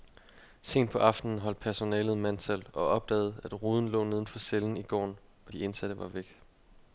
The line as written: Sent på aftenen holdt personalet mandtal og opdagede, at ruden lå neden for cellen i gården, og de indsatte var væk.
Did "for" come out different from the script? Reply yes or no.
no